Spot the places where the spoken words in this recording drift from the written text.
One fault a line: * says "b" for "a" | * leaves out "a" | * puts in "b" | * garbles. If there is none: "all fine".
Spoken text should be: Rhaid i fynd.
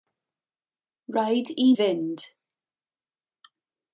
all fine